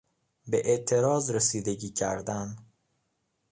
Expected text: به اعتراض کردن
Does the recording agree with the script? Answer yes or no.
no